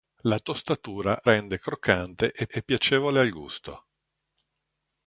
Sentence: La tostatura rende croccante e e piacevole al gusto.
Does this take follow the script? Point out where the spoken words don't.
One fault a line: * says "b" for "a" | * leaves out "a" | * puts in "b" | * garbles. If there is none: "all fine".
all fine